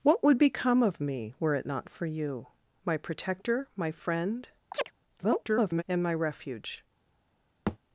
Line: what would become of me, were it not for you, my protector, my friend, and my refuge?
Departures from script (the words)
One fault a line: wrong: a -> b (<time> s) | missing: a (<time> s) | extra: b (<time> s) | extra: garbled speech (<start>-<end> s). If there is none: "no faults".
extra: garbled speech (5.2-5.8 s)